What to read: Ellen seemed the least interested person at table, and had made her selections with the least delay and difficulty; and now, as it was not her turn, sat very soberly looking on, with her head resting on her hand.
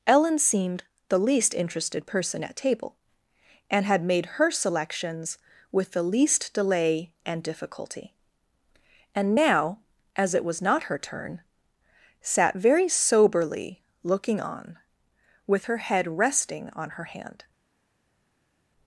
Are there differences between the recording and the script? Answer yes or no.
no